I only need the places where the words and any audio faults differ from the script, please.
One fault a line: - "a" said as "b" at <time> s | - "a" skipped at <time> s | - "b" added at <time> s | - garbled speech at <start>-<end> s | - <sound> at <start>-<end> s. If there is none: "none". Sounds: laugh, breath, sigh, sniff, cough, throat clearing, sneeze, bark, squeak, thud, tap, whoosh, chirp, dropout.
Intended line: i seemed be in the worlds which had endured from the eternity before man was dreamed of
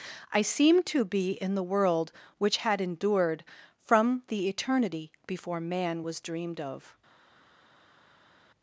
- "to" added at 0.9 s
- "worlds" said as "world" at 1.6 s